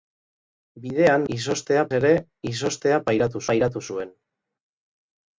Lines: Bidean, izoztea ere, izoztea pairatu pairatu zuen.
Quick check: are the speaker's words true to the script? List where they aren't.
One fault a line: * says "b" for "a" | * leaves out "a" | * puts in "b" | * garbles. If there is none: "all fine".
all fine